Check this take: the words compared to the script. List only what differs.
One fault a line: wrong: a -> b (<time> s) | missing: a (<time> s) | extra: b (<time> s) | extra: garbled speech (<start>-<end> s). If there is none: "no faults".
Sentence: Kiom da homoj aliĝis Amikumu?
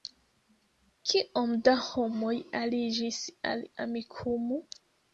extra: al (3.5 s)